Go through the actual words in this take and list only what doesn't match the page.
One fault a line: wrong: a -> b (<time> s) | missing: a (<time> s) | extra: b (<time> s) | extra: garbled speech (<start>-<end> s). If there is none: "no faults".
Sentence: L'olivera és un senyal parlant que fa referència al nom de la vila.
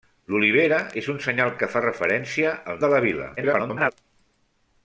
missing: parlant (1.5 s)
missing: nom (2.8 s)
extra: garbled speech (3.4-3.9 s)